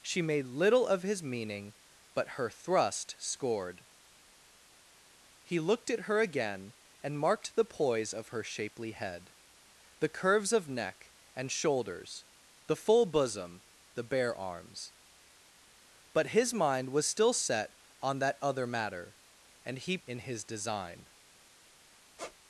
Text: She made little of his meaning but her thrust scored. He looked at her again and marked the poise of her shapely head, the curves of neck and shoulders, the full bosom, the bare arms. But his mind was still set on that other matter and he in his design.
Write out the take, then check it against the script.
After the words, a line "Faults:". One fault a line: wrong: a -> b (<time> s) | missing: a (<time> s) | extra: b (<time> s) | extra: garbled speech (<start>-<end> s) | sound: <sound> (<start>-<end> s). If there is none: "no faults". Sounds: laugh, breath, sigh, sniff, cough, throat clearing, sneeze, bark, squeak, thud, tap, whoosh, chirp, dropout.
She made little of his meaning but her thrust scored. He looked at her again and marked the poise of her shapely head, the curves of neck and shoulders, the full bosom, the bare arms. But his mind was still set on that other matter and he in his design.
Faults:
sound: squeak (22.2-22.4 s)